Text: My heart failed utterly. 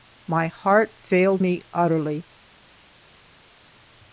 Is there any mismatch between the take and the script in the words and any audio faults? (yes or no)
yes